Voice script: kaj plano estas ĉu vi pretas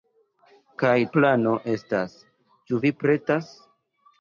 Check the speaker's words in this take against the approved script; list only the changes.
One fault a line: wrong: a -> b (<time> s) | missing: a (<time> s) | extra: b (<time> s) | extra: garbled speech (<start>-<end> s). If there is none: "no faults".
no faults